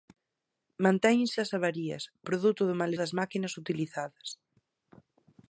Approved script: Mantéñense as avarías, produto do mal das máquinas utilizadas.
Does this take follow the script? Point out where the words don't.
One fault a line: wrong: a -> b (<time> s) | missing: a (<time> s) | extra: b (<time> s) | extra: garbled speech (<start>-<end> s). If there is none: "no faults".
no faults